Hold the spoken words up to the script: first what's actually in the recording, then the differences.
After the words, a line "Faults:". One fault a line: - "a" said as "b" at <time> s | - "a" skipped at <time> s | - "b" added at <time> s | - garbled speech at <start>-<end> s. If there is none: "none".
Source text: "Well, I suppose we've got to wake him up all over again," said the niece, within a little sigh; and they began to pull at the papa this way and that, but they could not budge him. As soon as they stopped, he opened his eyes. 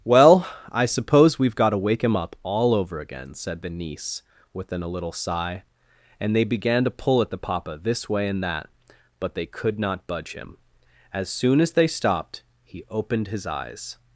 "Well, I suppose we've got to wake him up all over again," said the niece, within a little sigh; and they began to pull at the papa this way and that, but they could not budge him. As soon as they stopped, he opened his eyes.
Faults:
none